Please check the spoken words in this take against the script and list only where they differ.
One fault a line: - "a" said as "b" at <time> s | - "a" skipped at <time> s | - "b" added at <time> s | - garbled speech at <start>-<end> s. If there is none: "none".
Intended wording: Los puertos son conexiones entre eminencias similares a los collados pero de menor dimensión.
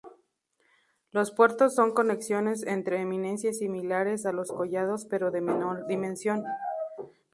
none